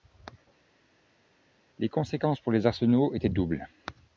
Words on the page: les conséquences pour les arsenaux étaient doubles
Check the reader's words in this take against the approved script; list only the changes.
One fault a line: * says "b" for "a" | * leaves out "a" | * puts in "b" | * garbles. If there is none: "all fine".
all fine